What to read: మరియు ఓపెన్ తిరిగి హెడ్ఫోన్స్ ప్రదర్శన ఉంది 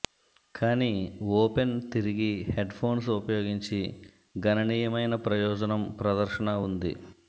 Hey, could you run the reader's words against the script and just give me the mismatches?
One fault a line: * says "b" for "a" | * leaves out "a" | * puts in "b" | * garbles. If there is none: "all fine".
* says "కానీ" for "మరియు"
* puts in "ఉపయోగించి గణనీయమైన ప్రయోజనం"